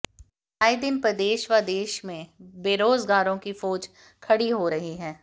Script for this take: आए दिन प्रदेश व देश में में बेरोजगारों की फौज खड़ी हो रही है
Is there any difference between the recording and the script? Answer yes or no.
yes